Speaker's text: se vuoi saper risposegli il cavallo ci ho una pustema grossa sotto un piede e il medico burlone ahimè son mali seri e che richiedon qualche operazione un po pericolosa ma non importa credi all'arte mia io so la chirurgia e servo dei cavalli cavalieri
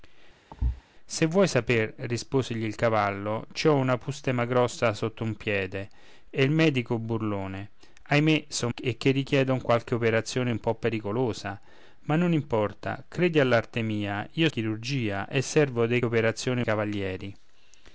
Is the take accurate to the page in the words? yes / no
no